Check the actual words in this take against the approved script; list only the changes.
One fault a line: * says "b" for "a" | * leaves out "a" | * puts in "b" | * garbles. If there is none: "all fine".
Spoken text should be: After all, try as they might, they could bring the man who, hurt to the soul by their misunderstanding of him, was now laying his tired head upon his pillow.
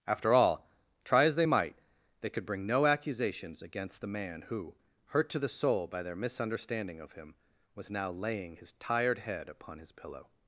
* puts in "no accusations against"